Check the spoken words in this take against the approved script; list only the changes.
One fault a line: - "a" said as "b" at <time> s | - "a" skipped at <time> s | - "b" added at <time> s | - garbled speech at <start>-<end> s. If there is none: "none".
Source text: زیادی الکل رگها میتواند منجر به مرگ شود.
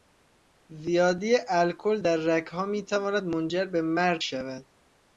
- "در" added at 2.0 s